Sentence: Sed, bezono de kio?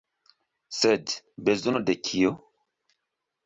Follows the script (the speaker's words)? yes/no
yes